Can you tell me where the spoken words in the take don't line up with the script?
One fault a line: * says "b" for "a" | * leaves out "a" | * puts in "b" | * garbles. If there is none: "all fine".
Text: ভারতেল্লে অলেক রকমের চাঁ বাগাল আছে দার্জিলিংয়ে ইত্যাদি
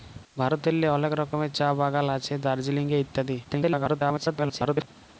* garbles